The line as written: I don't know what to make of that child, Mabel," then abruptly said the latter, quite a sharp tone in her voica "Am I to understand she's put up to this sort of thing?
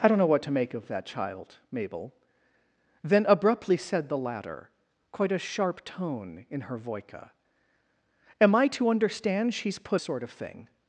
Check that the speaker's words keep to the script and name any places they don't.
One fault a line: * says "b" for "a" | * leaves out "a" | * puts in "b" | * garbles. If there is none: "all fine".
* leaves out "up to this"